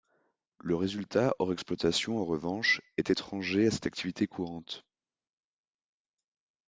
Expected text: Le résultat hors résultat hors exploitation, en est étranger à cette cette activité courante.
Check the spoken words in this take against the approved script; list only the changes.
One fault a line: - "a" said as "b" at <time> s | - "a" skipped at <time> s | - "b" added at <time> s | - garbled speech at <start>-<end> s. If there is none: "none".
- "résultat hors" skipped at 1.5 s
- "revanche" added at 2.2 s
- "cette" skipped at 3.9 s